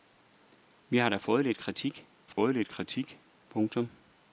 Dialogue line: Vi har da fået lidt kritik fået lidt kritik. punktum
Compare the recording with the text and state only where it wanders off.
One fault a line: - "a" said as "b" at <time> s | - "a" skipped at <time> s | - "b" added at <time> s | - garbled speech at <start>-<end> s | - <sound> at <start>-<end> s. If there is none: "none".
- dropout at 2.3-2.4 s